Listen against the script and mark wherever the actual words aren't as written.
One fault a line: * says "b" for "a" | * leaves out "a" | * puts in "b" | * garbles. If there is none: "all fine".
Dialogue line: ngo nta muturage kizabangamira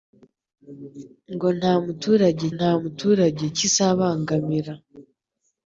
* puts in "nta muturage"